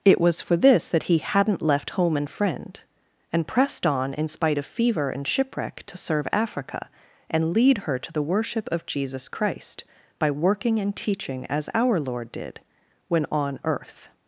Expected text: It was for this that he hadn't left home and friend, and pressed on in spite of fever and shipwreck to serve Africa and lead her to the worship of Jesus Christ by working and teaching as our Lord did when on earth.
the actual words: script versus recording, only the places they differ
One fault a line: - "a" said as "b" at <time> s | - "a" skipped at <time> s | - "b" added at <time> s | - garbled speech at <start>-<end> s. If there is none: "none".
none